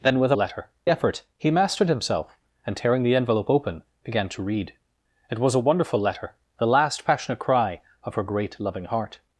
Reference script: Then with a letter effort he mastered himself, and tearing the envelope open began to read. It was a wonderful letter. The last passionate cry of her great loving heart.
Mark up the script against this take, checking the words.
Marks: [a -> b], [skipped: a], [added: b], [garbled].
Then with a letter effort he mastered himself, and tearing the envelope open began to read. It was a wonderful letter. The last passionate cry of her great loving heart.